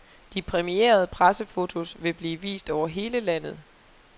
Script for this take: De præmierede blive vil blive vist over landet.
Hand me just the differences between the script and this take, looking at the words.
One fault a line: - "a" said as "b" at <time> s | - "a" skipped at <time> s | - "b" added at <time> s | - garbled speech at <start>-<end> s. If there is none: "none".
- "blive" said as "pressefotos" at 1.1 s
- "hele" added at 2.9 s